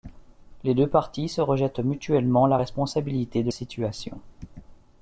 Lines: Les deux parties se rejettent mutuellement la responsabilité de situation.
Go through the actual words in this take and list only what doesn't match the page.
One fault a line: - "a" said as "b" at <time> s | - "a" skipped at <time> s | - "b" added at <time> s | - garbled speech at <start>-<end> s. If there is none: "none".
none